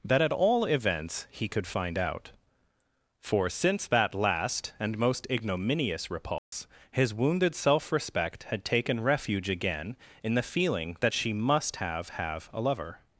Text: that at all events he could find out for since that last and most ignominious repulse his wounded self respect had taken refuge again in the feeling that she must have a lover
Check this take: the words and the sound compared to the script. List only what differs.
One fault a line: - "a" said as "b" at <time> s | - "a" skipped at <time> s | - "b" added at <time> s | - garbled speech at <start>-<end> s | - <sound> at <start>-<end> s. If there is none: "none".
- dropout at 6.4-6.5 s
- "have" added at 12.1 s